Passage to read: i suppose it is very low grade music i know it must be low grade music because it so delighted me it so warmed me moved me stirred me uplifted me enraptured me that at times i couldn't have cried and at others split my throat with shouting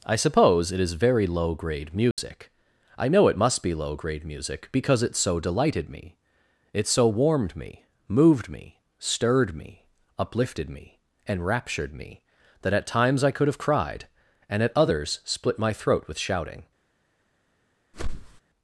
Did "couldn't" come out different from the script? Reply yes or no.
yes